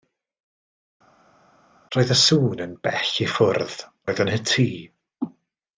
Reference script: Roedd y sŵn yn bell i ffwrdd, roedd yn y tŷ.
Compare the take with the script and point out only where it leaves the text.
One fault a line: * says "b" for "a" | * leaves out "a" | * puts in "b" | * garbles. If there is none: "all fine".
all fine